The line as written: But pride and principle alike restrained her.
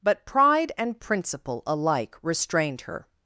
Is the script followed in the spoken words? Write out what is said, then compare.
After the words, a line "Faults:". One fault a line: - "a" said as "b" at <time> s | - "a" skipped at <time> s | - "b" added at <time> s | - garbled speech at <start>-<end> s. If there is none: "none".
But pride and principle alike restrained her.
Faults:
none